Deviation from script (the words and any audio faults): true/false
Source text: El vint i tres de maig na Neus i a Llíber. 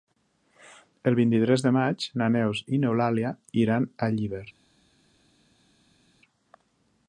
true